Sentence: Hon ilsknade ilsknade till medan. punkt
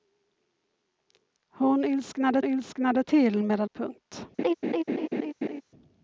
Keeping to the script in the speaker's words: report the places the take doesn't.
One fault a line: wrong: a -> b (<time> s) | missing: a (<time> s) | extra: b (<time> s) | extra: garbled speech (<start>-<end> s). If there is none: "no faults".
no faults